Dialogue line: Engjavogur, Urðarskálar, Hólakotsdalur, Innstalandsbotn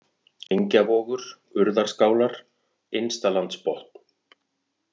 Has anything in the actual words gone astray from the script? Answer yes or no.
yes